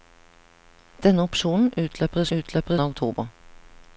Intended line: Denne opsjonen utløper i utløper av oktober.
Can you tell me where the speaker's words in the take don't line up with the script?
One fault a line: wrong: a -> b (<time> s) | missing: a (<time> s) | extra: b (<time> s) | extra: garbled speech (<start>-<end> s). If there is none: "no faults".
no faults